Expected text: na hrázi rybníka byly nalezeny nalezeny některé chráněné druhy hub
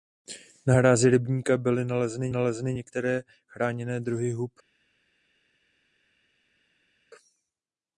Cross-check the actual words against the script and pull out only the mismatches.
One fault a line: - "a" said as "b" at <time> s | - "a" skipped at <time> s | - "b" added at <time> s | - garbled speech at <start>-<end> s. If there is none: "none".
none